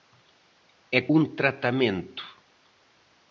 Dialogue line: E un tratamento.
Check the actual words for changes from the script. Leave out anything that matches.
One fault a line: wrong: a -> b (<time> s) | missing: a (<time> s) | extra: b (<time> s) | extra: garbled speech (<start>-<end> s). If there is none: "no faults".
no faults